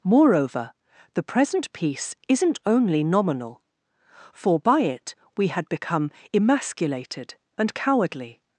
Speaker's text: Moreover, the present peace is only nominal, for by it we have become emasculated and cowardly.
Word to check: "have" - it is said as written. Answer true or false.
false